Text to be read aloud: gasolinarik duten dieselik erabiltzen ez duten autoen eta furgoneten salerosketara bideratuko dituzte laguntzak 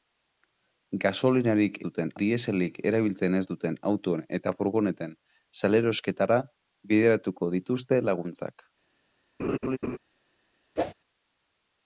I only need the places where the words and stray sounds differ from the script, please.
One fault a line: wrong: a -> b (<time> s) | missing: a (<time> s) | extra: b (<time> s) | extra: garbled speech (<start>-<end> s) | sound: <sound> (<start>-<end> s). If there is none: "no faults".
sound: laugh (9.4-10.0 s)
sound: whoosh (10.8-10.9 s)